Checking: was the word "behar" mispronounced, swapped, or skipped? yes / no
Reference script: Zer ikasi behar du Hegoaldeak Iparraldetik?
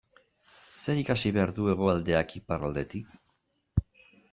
no